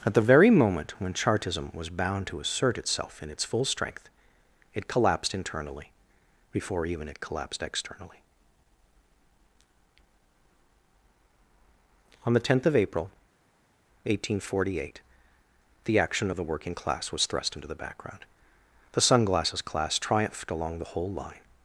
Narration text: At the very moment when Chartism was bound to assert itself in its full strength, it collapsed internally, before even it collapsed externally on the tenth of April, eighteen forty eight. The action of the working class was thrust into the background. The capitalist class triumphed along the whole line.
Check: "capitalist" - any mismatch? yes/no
yes